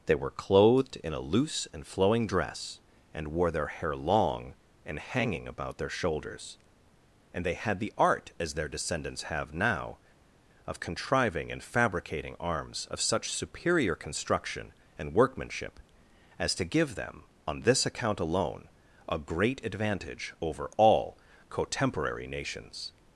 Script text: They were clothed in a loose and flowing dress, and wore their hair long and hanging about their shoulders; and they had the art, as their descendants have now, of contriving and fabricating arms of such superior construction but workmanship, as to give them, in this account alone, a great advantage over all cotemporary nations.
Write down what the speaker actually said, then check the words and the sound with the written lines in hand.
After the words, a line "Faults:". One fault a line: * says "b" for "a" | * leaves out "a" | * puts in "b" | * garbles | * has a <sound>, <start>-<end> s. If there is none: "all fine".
They were clothed in a loose and flowing dress, and wore their hair long and hanging about their shoulders; and they had the art, as their descendants have now, of contriving and fabricating arms of such superior construction and workmanship, as to give them, on this account alone, a great advantage over all cotemporary nations.
Faults:
* says "and" for "but"
* says "on" for "in"